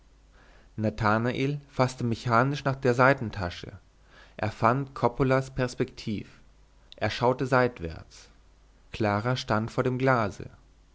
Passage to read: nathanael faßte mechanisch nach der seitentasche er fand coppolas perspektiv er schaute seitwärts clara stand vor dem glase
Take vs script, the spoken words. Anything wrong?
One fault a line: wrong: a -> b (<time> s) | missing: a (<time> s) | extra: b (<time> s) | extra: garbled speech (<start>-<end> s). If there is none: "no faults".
no faults